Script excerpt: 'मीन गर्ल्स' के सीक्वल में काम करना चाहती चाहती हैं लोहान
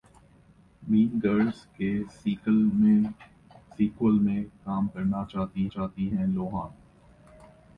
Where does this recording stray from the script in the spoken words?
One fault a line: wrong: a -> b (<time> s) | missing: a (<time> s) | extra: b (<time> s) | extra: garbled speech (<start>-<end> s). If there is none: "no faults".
no faults